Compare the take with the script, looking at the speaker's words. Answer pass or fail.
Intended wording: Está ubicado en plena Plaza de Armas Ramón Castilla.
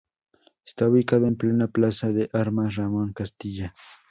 pass